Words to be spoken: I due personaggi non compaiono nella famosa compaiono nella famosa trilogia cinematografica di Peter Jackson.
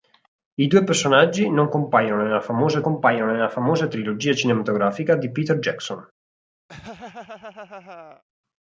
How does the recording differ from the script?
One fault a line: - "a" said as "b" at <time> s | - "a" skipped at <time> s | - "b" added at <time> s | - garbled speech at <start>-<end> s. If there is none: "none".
none